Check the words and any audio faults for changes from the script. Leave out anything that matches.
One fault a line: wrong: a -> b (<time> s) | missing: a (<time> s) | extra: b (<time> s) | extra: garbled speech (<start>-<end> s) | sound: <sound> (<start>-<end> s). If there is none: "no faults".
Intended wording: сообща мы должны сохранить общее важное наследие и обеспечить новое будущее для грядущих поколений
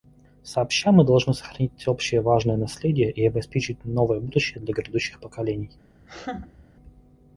sound: laugh (6.0-6.7 s)